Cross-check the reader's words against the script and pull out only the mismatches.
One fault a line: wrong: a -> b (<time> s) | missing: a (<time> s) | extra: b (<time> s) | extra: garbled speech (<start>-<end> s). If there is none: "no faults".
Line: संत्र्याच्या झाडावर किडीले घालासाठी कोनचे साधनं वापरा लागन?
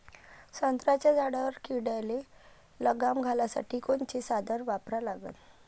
extra: लगाम (2.8 s)